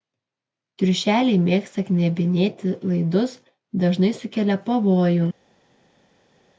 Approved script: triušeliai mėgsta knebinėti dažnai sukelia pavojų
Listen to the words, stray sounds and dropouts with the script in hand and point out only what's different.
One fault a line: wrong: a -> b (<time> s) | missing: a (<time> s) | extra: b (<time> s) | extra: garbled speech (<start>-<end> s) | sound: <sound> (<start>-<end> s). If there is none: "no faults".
extra: laidus (2.9 s)